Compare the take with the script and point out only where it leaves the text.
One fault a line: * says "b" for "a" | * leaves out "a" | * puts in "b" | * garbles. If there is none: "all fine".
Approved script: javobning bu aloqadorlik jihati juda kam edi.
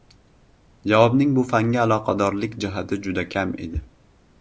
* puts in "fanga"